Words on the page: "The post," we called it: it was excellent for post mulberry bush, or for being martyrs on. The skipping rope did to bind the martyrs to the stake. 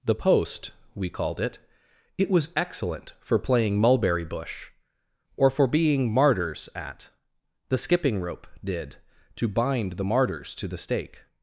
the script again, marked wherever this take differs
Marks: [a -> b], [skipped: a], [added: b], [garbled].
"The post," we called it: it was excellent for [post -> playing] mulberry bush, or for being martyrs [on. -> at] The skipping rope did to bind the martyrs to the stake.